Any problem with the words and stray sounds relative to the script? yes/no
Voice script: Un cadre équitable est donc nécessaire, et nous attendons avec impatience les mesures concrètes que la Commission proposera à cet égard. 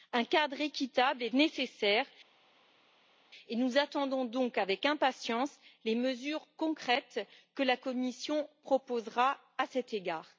yes